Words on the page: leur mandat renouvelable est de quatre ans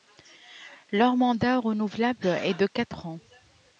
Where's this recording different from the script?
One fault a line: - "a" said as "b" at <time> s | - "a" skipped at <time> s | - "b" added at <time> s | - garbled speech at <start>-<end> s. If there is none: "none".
none